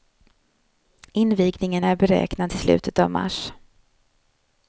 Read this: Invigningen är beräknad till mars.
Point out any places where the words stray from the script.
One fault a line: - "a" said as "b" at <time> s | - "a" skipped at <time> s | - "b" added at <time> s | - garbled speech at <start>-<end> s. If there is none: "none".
- "slutet av" added at 2.5 s